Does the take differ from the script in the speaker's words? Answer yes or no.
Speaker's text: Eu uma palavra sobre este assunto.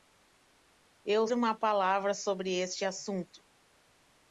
no